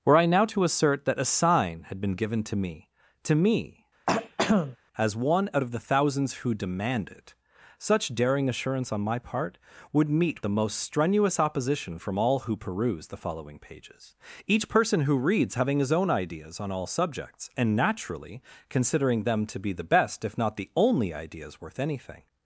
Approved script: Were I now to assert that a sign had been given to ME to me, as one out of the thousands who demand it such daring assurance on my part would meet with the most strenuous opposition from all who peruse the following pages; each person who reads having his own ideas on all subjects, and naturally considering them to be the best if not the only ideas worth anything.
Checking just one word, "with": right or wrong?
wrong